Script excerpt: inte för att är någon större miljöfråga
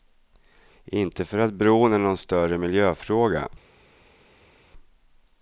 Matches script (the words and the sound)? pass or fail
fail